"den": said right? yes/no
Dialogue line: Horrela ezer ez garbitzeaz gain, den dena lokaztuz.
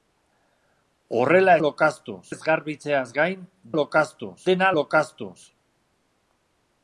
no